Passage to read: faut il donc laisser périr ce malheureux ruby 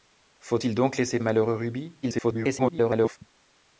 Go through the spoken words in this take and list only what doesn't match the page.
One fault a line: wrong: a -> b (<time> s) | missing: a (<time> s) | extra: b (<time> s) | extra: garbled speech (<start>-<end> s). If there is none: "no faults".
missing: périr ce (1.2 s)
extra: garbled speech (2.0-3.2 s)